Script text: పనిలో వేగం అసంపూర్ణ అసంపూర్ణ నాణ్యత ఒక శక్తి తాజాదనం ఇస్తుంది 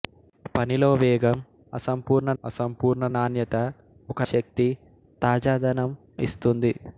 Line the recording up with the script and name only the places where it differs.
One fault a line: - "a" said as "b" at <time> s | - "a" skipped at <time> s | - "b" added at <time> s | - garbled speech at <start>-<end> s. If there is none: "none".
none